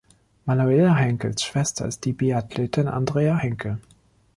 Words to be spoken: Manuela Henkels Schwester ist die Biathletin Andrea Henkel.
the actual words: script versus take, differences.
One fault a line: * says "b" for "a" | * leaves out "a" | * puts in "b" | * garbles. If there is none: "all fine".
all fine